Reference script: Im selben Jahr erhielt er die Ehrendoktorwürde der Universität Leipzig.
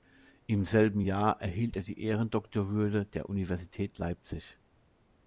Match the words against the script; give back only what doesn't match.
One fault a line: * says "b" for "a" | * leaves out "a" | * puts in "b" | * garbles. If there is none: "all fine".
all fine